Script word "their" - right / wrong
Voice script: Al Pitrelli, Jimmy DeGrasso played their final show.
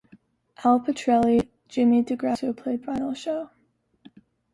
wrong